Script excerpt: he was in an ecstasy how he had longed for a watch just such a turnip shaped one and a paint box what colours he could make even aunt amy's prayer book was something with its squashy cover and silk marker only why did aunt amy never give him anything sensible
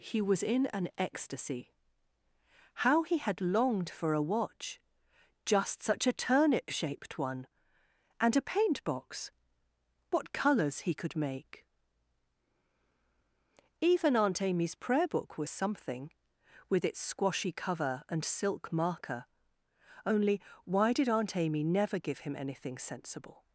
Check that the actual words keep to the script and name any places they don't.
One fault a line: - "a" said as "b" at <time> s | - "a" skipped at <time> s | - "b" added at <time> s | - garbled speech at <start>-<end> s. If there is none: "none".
none